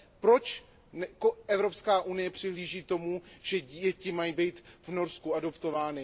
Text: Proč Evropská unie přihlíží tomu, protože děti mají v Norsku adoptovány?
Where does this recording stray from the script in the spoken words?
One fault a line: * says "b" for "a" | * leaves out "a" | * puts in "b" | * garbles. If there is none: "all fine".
* says "že" for "protože"
* puts in "být"